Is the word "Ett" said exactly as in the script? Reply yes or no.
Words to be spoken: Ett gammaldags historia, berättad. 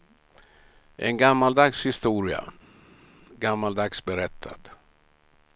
no